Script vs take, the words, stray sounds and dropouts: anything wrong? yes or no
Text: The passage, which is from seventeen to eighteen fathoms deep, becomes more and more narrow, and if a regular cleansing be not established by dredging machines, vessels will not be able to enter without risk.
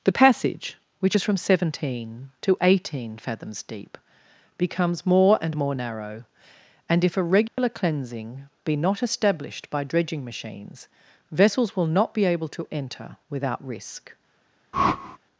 yes